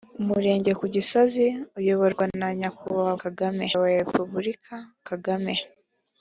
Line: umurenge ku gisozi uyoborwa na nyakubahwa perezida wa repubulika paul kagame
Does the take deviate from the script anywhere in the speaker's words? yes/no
yes